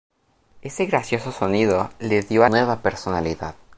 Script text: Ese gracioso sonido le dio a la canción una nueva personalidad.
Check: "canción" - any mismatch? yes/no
yes